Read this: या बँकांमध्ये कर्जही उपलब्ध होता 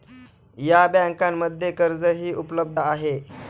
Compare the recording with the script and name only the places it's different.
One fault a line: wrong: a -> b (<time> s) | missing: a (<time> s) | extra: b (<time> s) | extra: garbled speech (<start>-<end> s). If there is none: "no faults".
wrong: होता -> आहे (2.8 s)